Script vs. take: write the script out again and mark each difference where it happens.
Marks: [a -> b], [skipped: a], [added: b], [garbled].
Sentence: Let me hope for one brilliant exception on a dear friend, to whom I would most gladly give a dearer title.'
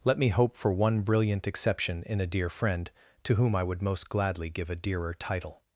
Let me hope for one brilliant exception [on -> in] a dear friend, to whom I would most gladly give a dearer title.'